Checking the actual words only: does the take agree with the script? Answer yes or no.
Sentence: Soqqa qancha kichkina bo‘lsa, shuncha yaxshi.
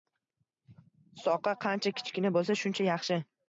yes